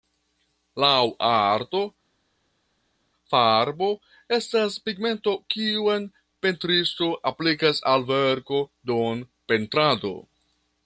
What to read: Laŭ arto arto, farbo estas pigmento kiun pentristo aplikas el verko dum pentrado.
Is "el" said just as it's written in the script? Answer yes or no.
no